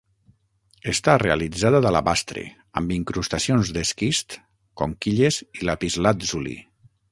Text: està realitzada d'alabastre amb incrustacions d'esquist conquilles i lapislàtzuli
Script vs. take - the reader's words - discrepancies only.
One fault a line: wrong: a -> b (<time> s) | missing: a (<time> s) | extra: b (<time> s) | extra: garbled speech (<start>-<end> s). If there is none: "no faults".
no faults